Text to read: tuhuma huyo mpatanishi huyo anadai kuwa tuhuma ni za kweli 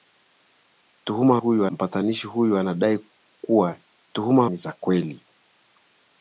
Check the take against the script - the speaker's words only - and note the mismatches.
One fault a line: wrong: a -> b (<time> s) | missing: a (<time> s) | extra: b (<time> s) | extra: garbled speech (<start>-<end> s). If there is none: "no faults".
no faults